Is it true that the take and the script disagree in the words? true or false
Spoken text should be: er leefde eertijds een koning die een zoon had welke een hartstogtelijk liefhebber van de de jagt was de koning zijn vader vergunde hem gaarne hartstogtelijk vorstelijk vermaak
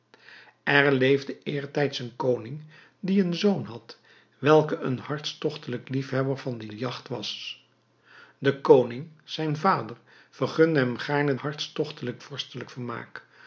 false